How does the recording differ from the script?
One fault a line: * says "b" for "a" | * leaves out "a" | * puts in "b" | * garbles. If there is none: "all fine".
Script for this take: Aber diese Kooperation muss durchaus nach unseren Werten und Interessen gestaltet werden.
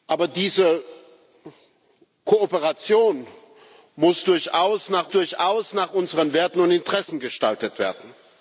* puts in "durchaus nach"